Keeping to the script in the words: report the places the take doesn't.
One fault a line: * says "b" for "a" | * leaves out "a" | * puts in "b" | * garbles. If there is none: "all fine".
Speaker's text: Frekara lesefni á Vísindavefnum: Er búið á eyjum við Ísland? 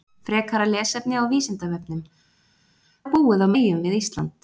all fine